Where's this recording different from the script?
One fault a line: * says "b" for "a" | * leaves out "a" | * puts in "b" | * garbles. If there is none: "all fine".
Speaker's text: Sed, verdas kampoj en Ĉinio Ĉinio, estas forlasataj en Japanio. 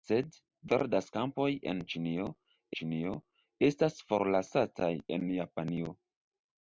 all fine